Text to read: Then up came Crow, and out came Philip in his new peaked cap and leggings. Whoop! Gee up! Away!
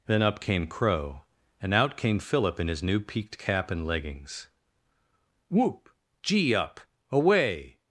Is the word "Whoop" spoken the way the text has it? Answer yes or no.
yes